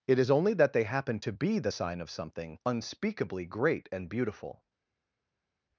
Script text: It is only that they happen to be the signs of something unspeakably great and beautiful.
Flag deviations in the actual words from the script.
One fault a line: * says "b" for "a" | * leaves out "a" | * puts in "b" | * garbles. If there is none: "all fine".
* says "sign" for "signs"